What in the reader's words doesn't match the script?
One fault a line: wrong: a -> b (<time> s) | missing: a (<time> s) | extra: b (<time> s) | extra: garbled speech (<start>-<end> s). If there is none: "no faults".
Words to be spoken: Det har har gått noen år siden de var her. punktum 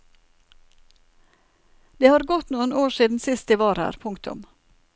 missing: har (2.2 s)
extra: sist (3.2 s)